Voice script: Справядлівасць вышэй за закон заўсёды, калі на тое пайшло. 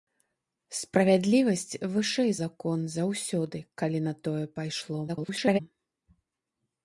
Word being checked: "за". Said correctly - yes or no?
no